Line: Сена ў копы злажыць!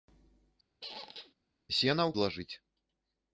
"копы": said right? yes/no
no